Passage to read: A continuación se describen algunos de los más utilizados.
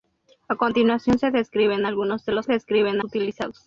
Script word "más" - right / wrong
wrong